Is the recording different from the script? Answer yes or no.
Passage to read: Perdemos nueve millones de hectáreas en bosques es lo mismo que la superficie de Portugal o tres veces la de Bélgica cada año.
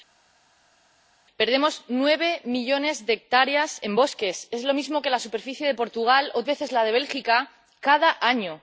yes